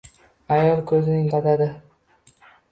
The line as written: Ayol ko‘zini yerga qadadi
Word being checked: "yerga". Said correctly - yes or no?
no